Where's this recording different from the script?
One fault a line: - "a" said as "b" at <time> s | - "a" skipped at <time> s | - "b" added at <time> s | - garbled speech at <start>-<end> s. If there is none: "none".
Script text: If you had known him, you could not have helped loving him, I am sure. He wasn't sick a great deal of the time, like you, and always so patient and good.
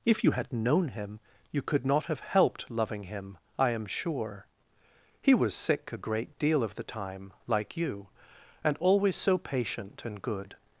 - "wasn't" said as "was" at 5.3 s